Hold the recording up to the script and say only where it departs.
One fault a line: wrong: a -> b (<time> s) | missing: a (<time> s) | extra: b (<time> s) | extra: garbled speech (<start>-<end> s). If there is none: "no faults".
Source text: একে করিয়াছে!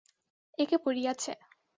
no faults